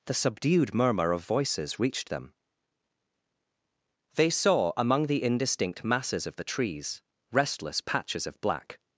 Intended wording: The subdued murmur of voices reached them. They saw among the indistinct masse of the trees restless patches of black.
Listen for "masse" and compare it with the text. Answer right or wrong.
wrong